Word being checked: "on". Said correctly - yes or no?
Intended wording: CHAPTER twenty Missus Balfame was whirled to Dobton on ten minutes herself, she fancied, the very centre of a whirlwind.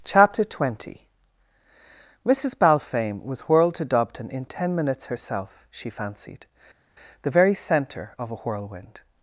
no